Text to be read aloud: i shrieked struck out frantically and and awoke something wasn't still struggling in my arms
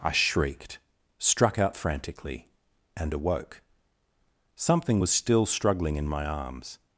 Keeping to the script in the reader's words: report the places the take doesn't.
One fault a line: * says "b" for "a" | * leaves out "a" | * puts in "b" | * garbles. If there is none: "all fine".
* leaves out "and"
* says "was" for "wasn't"